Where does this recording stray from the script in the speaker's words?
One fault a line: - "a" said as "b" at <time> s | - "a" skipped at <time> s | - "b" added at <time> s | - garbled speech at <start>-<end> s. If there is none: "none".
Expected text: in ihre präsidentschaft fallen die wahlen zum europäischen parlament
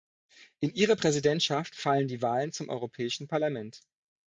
none